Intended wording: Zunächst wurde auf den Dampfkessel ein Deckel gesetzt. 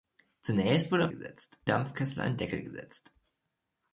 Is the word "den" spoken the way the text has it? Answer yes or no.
no